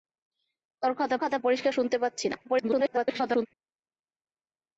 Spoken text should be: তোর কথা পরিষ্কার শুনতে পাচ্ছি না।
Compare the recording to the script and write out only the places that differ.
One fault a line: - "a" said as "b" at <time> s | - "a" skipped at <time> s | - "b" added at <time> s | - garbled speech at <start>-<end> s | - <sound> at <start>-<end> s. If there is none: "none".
- "কথা" added at 1.2 s
- garbled speech at 2.4-3.5 s